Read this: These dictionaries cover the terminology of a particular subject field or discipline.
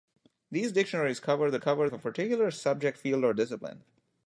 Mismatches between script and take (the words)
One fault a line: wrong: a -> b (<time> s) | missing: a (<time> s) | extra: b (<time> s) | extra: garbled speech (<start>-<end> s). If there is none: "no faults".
wrong: terminology -> cover (1.6 s)